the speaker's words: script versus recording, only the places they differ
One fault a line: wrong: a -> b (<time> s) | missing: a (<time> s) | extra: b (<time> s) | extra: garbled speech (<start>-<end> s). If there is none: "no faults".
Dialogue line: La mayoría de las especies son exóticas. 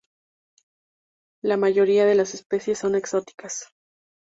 no faults